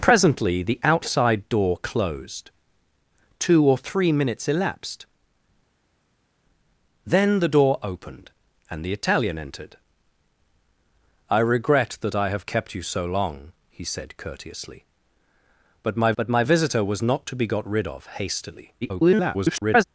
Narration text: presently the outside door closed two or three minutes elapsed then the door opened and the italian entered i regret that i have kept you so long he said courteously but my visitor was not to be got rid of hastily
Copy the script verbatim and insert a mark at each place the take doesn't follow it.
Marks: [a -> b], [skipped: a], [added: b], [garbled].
presently the outside door closed two or three minutes elapsed then the door opened and the italian entered i regret that i have kept you so long he said courteously but my [added: but my] visitor was not to be got rid of hastily [garbled]